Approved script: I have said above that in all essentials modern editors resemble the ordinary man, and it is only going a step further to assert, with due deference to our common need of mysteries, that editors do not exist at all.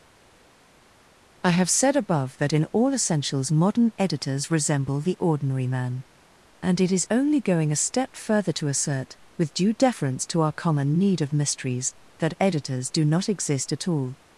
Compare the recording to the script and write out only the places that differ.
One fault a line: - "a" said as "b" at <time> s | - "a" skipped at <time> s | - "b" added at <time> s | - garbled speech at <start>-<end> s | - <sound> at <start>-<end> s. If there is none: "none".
none